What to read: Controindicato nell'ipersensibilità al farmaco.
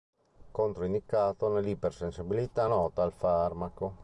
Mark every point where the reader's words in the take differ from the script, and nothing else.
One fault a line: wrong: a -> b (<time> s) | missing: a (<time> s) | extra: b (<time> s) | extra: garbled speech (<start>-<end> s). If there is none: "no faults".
extra: nota (2.6 s)